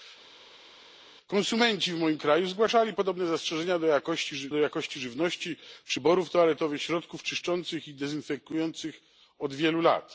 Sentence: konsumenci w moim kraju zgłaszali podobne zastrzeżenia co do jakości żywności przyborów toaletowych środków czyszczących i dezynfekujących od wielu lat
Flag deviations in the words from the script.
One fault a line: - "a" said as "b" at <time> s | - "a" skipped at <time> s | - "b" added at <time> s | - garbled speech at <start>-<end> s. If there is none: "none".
- "co" skipped at 3.8 s